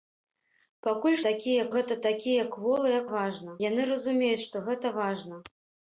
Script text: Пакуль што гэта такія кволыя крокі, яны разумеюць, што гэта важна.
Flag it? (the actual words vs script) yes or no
yes